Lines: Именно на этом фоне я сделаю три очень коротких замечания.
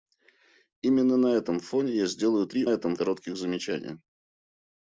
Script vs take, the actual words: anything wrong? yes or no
yes